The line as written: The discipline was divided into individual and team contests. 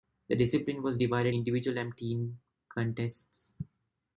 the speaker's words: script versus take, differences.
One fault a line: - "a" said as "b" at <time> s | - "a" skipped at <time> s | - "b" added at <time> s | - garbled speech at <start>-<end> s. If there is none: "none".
- "into" skipped at 1.3 s